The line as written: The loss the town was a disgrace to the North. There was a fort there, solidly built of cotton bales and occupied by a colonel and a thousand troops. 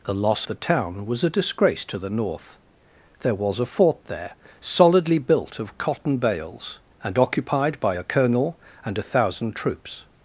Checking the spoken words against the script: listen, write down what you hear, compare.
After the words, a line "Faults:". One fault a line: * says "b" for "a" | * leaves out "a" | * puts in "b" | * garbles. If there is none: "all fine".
The loss the town was a disgrace to the North. There was a fort there, solidly built of cotton bales and occupied by a colonel and a thousand troops.
Faults:
all fine